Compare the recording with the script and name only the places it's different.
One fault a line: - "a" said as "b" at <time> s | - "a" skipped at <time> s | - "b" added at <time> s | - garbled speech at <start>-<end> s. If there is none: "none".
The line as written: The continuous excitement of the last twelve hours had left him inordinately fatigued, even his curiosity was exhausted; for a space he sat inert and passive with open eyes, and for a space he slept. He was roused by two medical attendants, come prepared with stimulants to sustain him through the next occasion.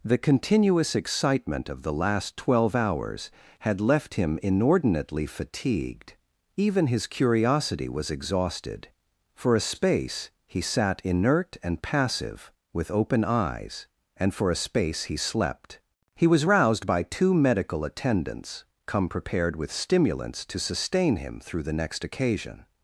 none